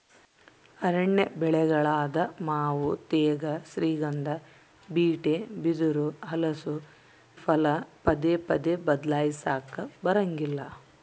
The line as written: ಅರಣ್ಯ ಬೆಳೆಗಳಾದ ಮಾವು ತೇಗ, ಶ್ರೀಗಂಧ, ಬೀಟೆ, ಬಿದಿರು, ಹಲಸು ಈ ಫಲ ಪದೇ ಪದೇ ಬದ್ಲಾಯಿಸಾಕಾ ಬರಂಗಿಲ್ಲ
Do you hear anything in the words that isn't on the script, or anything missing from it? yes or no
yes